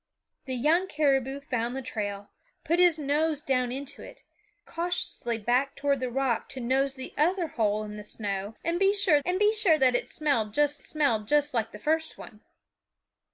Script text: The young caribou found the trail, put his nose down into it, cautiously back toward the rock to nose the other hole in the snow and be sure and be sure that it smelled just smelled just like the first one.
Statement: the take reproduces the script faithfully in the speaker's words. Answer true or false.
true